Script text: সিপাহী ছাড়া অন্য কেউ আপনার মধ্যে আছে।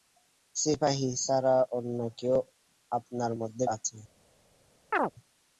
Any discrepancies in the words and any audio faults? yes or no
yes